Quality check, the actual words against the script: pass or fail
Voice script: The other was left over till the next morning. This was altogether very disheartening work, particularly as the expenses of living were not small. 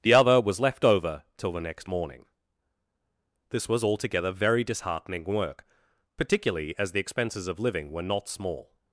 pass